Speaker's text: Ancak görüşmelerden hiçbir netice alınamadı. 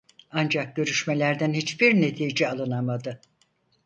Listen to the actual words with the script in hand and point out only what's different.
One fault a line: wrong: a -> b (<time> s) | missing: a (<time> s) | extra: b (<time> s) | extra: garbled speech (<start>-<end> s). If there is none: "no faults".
no faults